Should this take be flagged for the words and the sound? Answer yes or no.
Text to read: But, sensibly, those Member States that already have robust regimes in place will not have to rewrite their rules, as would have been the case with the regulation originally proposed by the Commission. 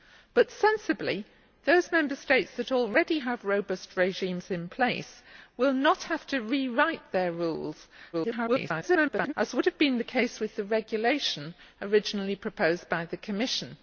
yes